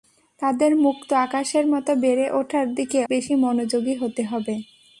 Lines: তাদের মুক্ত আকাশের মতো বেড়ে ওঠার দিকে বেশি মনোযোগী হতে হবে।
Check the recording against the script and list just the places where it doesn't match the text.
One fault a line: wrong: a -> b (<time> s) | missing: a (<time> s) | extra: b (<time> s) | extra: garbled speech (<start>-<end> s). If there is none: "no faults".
no faults